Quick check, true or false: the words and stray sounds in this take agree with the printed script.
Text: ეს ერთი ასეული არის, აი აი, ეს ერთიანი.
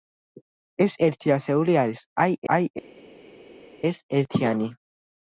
true